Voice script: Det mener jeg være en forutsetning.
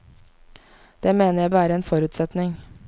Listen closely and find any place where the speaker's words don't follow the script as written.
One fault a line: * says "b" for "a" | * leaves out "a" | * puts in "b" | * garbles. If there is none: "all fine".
all fine